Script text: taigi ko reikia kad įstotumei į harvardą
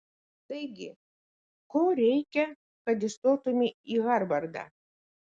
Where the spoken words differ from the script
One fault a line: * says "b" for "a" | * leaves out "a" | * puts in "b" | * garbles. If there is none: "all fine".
all fine